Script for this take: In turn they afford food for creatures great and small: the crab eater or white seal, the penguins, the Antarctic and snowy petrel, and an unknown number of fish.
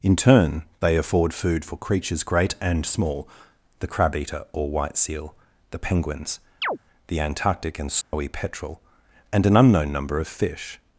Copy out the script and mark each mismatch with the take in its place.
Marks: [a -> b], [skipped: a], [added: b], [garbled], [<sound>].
In turn they afford food for creatures great and small: the crab eater or white seal, the penguins, [chirp] the Antarctic and snowy [dropout] petrel, and an unknown number of fish.